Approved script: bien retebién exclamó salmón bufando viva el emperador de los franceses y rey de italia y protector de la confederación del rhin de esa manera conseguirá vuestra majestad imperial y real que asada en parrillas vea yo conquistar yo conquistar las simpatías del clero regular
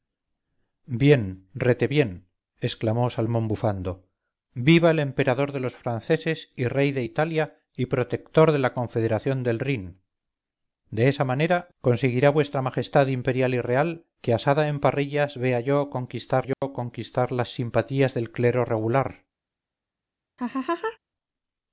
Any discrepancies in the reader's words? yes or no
no